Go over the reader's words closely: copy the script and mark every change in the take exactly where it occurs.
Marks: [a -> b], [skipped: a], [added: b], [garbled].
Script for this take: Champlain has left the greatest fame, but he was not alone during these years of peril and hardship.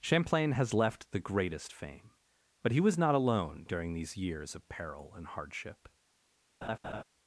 Champlain has left the greatest fame, but he was not alone during these years of peril and hardship.